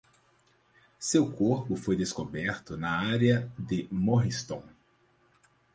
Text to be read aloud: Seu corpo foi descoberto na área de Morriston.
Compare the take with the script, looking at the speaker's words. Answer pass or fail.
pass